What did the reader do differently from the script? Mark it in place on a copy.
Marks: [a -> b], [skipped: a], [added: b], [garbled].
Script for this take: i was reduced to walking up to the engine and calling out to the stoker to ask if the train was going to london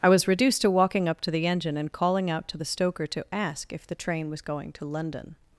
i was reduced to walking up to the engine and calling out to the stoker to ask if the train was going to london